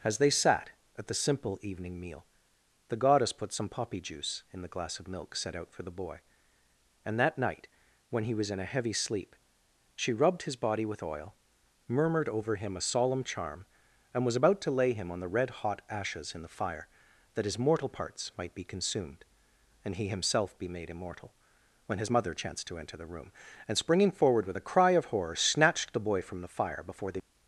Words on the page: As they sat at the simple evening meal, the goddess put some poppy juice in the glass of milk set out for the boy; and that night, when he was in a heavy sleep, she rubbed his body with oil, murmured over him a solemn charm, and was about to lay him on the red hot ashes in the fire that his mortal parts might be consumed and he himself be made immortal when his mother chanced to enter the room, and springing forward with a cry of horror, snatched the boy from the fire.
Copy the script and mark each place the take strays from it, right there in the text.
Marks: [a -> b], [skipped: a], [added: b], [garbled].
As they sat at the simple evening meal, the goddess put some poppy juice in the glass of milk set out for the boy; and that night, when he was in a heavy sleep, she rubbed his body with oil, murmured over him a solemn charm, and was about to lay him on the red hot ashes in the fire that his mortal parts might be consumed and he himself be made immortal when his mother chanced to enter the room, and springing forward with a cry of horror, snatched the boy from the fire. [added: Before the]